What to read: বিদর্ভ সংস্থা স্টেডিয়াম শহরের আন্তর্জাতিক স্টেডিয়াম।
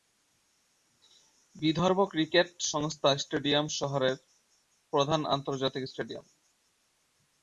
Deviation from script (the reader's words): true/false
true